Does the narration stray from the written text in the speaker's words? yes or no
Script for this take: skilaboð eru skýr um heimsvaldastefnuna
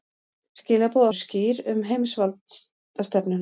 no